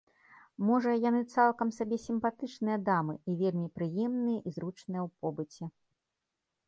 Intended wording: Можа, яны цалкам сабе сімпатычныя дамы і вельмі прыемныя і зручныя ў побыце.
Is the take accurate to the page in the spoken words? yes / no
yes